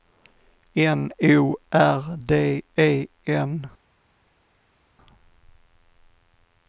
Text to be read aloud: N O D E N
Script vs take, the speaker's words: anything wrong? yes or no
yes